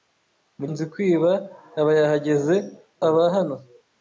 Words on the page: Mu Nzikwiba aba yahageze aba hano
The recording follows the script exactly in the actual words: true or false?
true